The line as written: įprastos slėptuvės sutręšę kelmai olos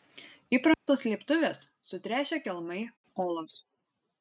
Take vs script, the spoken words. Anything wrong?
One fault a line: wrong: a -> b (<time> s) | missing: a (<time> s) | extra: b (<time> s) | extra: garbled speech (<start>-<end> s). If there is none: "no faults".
no faults